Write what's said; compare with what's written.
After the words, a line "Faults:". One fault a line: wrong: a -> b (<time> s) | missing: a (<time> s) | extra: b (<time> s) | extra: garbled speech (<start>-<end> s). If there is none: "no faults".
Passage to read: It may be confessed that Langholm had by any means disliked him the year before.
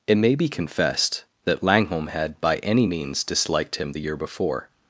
It may be confessed that Langholm had by any means disliked him the year before.
Faults:
no faults